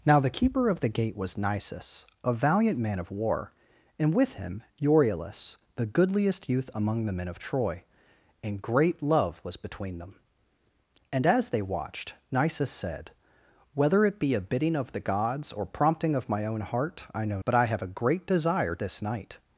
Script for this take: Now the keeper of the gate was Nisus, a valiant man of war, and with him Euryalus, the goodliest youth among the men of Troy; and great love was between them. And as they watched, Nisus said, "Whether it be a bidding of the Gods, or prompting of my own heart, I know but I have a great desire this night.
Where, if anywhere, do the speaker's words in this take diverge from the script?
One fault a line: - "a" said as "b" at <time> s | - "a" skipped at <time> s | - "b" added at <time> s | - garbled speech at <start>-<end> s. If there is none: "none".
none